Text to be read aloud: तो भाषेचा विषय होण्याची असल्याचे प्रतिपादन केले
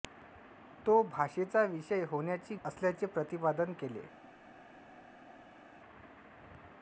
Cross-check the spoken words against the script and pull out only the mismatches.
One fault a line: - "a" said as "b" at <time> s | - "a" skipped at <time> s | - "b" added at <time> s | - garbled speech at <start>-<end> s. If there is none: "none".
none